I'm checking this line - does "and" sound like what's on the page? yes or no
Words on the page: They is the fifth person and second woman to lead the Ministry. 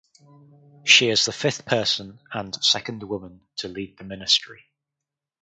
yes